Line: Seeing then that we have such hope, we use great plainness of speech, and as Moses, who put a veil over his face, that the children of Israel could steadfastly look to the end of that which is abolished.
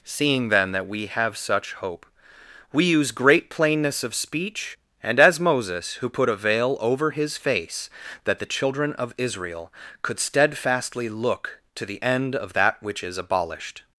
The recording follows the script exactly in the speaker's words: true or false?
true